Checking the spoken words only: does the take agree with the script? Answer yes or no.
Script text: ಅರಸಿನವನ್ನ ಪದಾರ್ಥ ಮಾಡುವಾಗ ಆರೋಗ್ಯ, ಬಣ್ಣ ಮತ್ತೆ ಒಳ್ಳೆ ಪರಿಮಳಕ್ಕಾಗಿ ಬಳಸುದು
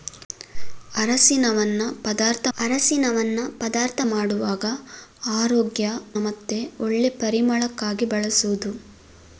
no